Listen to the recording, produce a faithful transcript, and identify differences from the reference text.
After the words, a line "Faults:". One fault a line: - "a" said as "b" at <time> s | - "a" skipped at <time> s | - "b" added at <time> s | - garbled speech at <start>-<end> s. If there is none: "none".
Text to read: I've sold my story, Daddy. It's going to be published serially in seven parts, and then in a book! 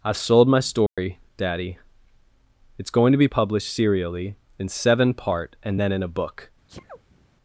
I've sold my story, Daddy. It's going to be published serially in seven part, and then in a book!
Faults:
- "parts" said as "part" at 5.1 s